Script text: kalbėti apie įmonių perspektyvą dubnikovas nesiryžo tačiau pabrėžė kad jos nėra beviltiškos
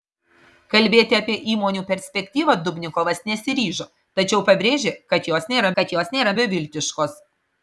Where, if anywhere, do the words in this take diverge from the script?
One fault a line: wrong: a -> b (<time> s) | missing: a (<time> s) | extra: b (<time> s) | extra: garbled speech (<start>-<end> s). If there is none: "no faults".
extra: kad jos nėra (5.8 s)